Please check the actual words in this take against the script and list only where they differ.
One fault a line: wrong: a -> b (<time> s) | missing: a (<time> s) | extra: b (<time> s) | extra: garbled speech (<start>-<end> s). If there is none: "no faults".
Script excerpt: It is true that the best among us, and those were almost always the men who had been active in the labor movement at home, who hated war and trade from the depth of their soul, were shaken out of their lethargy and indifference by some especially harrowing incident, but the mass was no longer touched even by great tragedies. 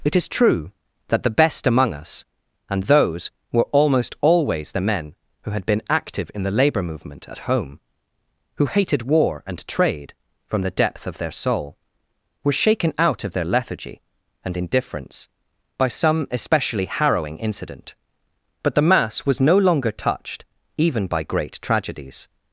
no faults